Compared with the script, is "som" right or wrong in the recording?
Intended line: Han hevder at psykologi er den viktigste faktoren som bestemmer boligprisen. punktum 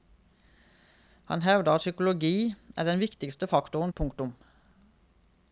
wrong